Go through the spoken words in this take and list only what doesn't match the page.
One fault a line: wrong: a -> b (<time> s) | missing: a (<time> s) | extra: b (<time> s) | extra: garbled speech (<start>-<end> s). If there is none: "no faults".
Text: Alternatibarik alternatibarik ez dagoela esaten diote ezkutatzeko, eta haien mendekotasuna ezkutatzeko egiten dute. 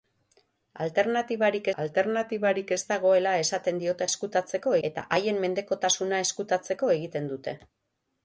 no faults